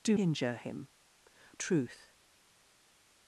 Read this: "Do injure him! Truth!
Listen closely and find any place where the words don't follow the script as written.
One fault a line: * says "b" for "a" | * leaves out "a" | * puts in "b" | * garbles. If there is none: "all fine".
all fine